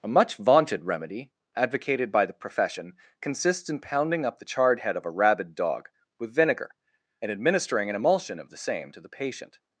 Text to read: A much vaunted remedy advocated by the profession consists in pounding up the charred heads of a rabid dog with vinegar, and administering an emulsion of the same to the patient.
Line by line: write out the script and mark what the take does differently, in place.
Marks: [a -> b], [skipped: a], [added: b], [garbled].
A much vaunted remedy advocated by the profession consists in pounding up the charred [heads -> head] of a rabid dog with vinegar, and administering an emulsion of the same to the patient.